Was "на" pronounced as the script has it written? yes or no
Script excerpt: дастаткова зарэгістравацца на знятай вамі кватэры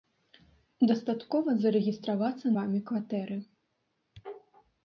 no